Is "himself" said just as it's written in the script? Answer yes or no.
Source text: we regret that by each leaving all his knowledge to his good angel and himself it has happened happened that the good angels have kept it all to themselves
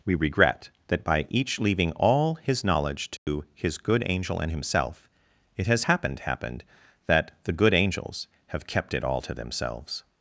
yes